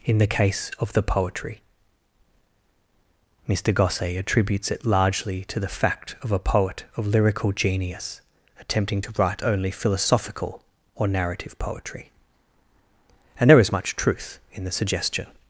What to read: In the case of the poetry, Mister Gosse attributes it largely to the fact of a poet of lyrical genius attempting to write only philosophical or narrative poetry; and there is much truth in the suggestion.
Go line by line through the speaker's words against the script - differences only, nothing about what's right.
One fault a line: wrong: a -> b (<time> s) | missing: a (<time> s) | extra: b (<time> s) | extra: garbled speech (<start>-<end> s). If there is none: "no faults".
no faults